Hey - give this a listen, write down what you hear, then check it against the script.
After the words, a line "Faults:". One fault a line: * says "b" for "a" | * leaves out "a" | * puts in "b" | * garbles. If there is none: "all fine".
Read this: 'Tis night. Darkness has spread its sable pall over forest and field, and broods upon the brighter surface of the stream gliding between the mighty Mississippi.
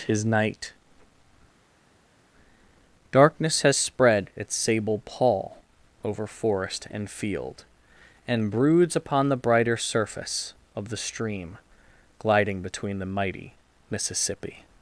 'Tis night. Darkness has spread its sable pall over forest and field, and broods upon the brighter surface of the stream gliding between the mighty Mississippi.
Faults:
all fine